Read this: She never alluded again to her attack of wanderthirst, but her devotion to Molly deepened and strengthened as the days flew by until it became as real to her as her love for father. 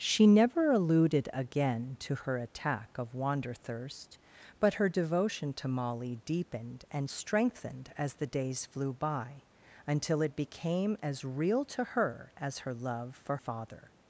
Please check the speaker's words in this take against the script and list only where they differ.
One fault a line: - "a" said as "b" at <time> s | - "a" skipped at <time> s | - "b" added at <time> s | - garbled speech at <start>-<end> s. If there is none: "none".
none